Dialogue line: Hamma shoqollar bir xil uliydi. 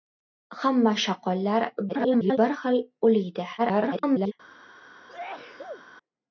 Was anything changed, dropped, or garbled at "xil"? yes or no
no